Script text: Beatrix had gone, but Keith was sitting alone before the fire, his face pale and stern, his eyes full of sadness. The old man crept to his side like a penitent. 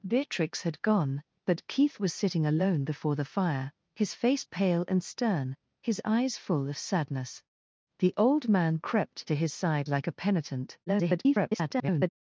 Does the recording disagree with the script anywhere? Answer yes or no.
yes